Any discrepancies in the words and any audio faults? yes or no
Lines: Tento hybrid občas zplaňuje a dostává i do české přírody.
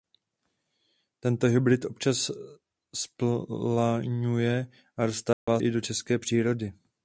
yes